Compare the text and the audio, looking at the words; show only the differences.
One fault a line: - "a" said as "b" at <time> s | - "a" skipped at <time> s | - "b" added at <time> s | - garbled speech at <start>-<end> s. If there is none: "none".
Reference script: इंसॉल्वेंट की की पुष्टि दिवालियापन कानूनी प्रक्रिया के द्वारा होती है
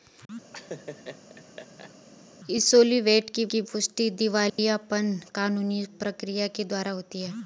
none